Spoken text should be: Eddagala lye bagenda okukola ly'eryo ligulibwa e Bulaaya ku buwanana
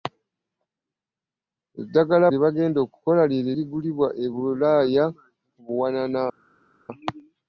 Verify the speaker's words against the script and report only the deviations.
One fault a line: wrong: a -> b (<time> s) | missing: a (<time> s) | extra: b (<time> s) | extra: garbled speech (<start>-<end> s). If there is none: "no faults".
no faults